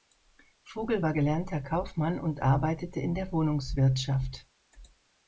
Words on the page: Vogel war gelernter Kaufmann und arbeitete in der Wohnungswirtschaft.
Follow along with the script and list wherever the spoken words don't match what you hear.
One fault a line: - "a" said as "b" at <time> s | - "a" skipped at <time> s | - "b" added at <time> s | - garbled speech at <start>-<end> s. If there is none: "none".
none